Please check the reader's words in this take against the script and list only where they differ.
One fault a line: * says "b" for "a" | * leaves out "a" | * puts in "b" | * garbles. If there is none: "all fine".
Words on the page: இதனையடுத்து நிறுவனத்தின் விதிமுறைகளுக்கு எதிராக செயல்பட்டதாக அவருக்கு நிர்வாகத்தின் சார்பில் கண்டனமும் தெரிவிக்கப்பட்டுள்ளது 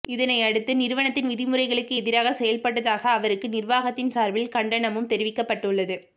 all fine